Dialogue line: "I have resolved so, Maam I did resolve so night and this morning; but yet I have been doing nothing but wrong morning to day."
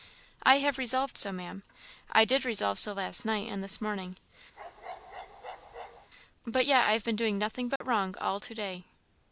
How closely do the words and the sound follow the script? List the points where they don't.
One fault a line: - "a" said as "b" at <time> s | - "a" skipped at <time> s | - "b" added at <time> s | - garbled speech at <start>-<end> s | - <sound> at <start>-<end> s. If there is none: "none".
- "last" added at 2.9 s
- bark at 4.6-6.1 s
- dropout at 7.8-7.8 s
- "morning" said as "all" at 8.2 s